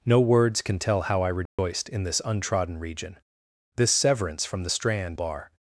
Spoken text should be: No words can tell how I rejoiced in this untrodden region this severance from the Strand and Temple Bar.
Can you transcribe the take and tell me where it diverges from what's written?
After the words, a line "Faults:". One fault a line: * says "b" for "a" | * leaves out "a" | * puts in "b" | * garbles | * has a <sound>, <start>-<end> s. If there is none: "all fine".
No words can tell how I rejoiced in this untrodden region this severance from the Strand Bar.
Faults:
* has a dropout, 1.5-1.6 s
* leaves out "and Temple"